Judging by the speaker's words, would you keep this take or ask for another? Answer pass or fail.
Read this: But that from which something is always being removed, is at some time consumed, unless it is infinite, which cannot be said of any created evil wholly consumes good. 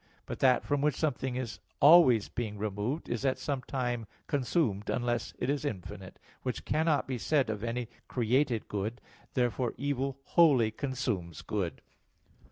fail